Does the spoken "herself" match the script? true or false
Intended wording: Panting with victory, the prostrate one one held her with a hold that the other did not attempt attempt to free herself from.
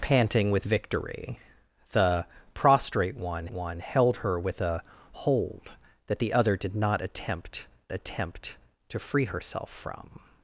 true